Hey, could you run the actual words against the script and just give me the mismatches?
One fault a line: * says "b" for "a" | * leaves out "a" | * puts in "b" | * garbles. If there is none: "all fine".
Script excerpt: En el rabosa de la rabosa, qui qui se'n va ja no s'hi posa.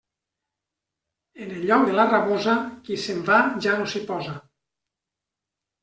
* says "lloc" for "rabosa"
* leaves out "qui"